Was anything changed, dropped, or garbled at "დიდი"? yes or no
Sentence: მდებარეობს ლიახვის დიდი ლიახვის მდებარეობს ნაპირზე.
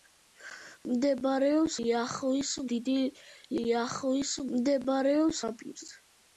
no